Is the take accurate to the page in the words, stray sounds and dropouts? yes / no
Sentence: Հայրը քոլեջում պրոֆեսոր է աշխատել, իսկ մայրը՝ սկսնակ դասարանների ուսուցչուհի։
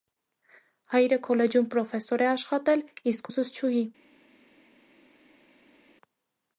no